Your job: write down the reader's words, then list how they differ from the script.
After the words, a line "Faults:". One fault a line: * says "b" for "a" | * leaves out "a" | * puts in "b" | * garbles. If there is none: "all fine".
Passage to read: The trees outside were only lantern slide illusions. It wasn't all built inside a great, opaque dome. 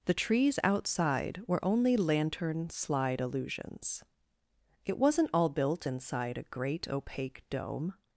The trees outside were only lantern slide illusions. It wasn't all built inside a great, opaque dome.
Faults:
all fine